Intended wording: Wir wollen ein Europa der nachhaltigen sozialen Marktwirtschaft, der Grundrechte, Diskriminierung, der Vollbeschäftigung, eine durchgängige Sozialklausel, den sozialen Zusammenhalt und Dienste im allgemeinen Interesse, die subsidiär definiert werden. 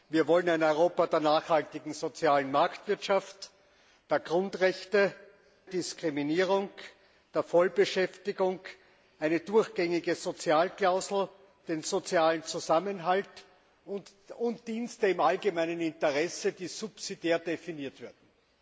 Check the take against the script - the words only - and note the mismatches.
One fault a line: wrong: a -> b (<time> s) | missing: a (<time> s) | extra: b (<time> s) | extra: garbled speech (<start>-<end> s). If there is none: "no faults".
no faults